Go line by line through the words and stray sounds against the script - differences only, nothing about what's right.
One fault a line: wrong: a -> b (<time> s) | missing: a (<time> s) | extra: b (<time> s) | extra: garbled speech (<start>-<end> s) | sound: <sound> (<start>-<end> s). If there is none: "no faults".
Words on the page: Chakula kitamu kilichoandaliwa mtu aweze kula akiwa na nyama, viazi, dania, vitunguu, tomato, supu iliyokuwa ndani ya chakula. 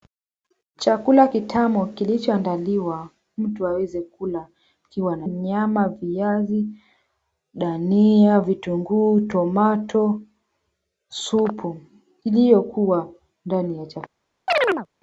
sound: chirp (14.5-14.9 s)